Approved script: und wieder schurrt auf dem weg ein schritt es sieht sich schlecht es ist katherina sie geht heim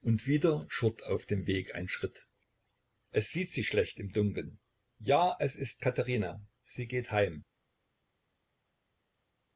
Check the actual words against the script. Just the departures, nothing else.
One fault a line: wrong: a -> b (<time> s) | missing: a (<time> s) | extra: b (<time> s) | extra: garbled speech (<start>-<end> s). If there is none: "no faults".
extra: im dunkeln ja (4.0 s)